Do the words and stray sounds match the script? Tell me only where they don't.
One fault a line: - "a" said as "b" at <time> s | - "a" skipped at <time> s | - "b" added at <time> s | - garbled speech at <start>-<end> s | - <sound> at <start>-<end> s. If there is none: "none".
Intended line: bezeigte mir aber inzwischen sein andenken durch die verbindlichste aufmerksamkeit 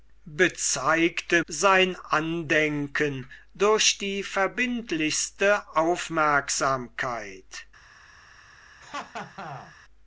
- "mir aber inzwischen" skipped at 1.4 s
- laugh at 8.8-9.8 s